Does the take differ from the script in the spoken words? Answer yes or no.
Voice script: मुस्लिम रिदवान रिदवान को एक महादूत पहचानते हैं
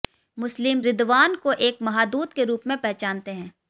yes